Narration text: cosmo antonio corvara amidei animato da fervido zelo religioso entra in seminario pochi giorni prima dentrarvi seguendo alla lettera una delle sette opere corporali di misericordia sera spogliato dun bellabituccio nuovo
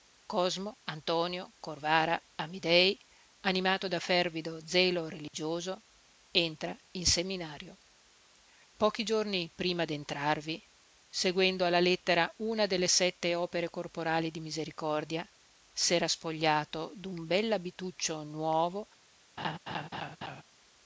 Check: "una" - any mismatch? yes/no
no